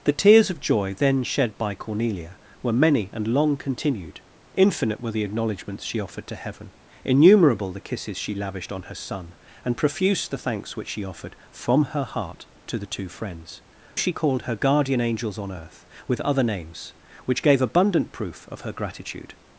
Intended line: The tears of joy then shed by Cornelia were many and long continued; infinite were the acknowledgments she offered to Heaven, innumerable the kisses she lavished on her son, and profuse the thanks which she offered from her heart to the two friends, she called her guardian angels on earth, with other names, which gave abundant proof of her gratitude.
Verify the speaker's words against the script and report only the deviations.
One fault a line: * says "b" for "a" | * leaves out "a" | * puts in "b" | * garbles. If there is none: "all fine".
all fine